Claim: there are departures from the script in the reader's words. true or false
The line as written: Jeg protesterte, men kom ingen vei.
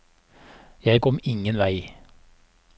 true